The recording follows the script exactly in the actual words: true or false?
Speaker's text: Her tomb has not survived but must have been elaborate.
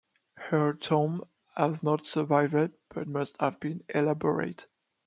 true